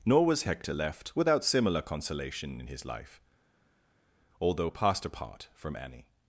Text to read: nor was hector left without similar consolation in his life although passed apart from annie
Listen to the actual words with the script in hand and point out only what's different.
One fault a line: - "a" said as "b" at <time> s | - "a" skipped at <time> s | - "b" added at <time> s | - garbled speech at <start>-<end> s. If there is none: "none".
none